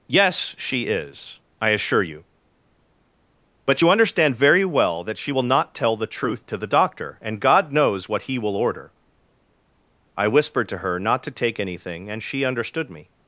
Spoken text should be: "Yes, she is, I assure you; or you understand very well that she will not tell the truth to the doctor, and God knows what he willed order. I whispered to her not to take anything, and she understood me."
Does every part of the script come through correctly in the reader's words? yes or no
no